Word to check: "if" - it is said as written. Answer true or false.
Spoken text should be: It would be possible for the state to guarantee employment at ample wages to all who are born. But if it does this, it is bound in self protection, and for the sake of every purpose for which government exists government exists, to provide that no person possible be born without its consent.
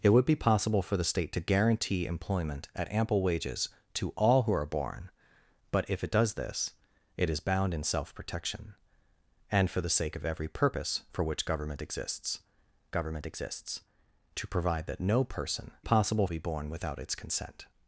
true